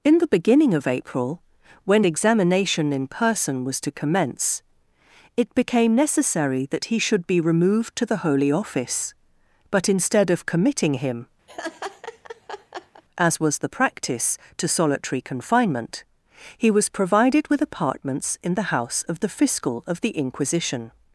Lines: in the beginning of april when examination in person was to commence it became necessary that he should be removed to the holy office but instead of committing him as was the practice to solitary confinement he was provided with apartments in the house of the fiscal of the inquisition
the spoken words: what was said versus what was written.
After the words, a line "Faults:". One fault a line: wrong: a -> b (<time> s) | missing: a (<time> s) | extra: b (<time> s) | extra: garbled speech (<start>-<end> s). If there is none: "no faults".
in the beginning of april when examination in person was to commence it became necessary that he should be removed to the holy office but instead of committing him as was the practice to solitary confinement he was provided with apartments in the house of the fiscal of the inquisition
Faults:
no faults